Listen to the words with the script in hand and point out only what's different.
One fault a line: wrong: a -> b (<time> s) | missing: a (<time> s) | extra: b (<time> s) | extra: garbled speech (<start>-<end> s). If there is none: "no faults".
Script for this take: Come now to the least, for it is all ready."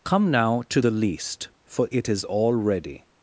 no faults